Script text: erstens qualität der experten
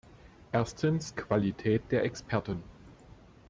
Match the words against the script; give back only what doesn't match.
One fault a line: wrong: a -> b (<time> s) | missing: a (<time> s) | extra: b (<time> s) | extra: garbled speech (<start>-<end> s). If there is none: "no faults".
no faults